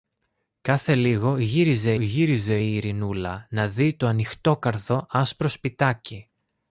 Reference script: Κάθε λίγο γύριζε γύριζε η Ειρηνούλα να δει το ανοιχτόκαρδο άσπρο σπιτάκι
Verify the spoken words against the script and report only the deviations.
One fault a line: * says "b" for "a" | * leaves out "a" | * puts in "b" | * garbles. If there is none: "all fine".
all fine